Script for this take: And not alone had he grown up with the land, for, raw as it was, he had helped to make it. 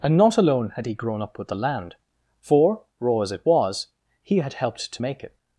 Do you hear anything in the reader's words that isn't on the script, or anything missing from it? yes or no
no